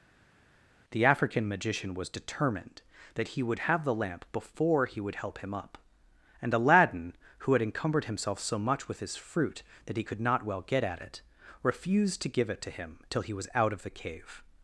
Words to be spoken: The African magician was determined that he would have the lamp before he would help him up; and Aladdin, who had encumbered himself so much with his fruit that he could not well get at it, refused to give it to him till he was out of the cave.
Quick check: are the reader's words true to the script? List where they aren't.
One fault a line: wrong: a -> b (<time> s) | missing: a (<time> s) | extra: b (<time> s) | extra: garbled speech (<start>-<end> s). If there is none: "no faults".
no faults